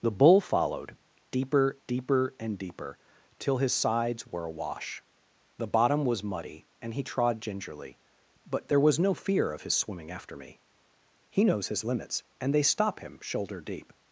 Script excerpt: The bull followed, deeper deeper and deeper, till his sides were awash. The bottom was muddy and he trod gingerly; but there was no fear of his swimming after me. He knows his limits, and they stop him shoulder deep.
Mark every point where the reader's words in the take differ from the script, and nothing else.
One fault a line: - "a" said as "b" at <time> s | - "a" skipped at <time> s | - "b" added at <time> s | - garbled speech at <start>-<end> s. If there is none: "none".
none